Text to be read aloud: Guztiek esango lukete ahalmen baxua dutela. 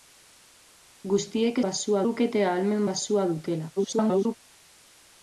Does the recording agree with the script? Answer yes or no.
no